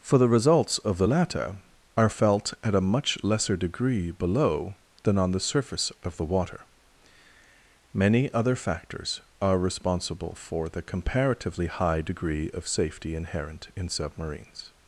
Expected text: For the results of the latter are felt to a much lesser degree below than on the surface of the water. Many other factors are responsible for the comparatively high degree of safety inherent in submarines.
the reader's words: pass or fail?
fail